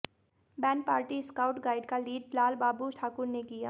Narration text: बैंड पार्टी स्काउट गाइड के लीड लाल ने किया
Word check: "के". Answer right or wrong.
wrong